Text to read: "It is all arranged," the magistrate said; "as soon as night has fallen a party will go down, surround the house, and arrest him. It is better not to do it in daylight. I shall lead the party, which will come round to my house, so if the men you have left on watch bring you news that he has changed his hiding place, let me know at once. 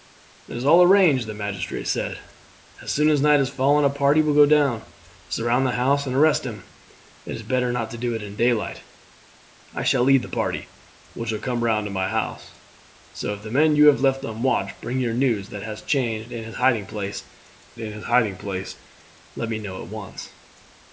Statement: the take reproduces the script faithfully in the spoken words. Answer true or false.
false